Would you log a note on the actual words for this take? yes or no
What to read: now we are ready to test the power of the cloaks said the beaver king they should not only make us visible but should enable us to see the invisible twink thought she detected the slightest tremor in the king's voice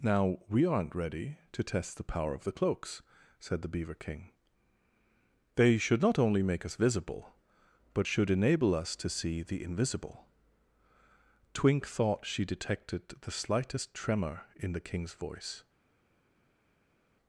yes